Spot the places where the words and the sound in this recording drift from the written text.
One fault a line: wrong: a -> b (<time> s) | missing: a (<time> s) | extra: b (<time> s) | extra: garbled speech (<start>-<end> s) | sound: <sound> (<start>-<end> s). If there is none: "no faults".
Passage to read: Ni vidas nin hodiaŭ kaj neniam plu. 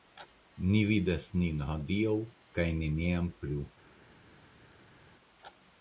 no faults